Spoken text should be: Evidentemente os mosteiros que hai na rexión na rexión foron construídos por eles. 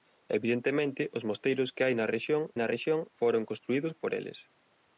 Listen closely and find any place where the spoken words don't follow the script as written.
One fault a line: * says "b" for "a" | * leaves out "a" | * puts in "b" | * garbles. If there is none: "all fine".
all fine